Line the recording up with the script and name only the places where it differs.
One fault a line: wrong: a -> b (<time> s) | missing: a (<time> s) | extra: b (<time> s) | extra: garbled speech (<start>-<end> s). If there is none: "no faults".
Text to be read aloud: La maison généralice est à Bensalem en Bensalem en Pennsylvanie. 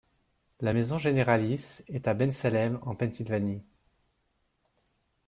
missing: Bensalem en (2.9 s)